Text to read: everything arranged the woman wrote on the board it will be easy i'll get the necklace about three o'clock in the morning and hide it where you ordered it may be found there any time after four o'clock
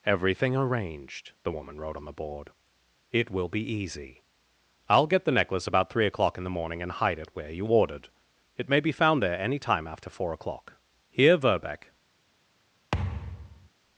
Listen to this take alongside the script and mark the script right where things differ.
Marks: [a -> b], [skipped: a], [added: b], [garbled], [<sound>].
everything arranged the woman wrote on the board it will be easy i'll get the necklace about three o'clock in the morning and hide it where you ordered it may be found there any time after four o'clock [added: here verbeck] [thud]